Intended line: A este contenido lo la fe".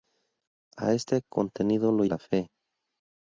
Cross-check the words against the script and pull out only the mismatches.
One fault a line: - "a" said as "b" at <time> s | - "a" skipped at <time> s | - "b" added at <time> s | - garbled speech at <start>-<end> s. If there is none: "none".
none